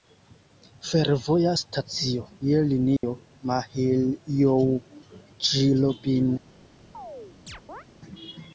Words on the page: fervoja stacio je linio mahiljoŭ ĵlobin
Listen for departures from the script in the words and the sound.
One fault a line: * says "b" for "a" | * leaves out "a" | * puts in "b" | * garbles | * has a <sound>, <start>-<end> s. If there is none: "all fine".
* has a dropout, 3.0-3.0 s
* has a chirp, 6.9-7.8 s